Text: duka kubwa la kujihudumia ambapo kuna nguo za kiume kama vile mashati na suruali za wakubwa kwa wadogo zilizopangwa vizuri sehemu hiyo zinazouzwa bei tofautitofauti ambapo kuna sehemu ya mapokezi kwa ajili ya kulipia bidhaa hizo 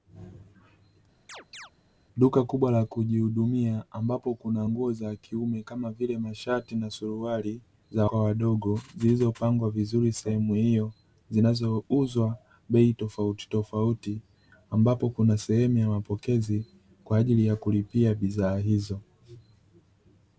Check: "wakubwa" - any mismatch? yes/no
yes